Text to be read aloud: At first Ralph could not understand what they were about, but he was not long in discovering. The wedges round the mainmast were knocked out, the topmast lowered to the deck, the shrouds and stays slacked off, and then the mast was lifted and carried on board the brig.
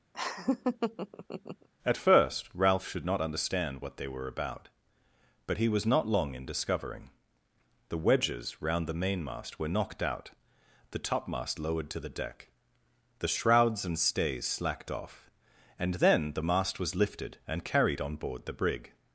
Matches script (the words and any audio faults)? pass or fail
fail